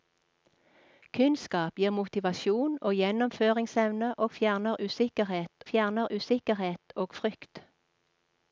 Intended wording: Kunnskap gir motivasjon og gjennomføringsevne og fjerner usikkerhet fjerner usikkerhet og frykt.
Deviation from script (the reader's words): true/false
false